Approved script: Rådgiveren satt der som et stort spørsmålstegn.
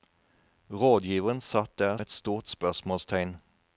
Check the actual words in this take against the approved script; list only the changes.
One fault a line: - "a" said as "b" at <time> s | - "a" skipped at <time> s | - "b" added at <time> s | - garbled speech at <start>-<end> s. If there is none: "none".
- "som" skipped at 2.0 s